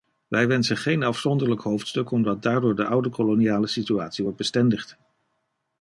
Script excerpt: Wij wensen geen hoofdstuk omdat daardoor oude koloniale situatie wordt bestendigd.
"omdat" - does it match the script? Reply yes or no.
yes